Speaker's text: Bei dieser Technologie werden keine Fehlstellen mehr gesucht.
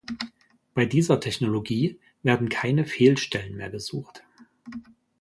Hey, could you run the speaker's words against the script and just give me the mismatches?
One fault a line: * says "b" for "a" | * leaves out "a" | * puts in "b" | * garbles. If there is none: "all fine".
all fine